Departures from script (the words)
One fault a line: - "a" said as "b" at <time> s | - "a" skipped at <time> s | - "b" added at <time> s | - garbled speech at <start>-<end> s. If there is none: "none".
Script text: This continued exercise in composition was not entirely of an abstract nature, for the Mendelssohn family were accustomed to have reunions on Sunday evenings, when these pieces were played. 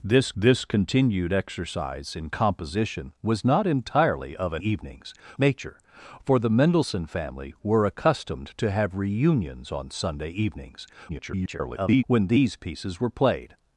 - "this" added at 0.4 s
- "abstract" said as "evenings" at 4.6 s
- garbled speech at 11.1-12.0 s